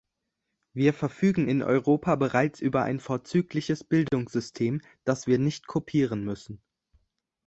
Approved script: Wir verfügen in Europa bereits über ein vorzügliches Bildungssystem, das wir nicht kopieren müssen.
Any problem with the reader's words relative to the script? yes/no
no